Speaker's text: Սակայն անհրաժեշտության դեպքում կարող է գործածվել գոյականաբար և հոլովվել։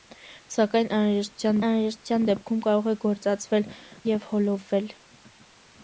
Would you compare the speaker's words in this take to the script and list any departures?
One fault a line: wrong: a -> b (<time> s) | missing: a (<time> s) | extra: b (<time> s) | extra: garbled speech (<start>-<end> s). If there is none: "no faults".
extra: անհրաժեշտության (1.7 s)
missing: գոյականաբար (3.7 s)